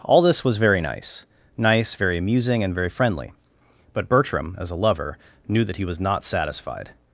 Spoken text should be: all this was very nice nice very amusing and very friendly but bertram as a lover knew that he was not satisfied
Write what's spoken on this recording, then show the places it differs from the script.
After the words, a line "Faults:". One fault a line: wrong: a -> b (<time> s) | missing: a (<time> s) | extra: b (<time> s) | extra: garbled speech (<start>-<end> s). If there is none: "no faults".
all this was very nice nice very amusing and very friendly but bertram as a lover knew that he was not satisfied
Faults:
no faults